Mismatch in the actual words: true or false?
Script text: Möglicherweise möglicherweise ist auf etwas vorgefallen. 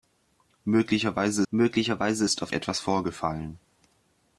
false